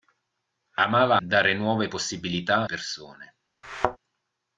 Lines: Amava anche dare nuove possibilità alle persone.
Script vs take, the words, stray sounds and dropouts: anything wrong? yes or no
yes